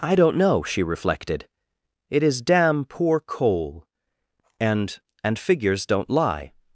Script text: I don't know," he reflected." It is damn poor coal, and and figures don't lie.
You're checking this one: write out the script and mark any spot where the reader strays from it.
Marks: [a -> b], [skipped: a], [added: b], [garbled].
I don't know," [he -> she] reflected." It is damn poor coal, and and figures don't lie.